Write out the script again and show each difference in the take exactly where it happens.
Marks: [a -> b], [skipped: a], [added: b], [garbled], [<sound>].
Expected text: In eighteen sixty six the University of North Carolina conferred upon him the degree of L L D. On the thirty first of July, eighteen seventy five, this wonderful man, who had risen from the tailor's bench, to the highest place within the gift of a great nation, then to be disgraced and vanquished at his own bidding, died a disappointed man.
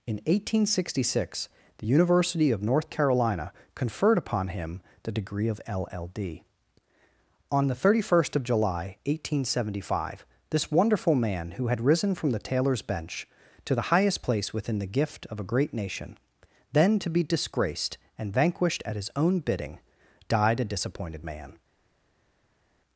In eighteen sixty six the University of North Carolina conferred upon him the degree of L L D. On the thirty first of July, eighteen seventy five, this wonderful man, who had risen from the tailor's bench, to the highest place within the gift of a great nation, then to be disgraced and vanquished at his own bidding, died a disappointed man.